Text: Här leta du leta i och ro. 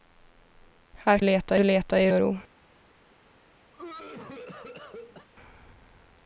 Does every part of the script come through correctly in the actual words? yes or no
yes